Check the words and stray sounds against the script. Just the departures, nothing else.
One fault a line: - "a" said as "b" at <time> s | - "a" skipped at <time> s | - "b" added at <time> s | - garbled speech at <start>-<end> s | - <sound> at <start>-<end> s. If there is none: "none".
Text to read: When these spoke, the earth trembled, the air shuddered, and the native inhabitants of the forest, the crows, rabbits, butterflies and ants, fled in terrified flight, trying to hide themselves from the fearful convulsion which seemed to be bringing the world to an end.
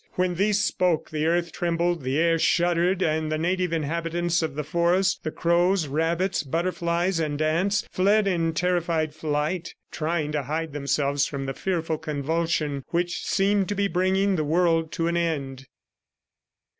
none